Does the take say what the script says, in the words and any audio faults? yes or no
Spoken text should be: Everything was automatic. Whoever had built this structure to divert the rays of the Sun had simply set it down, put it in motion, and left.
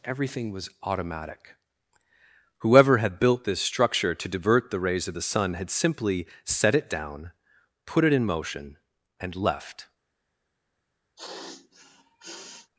no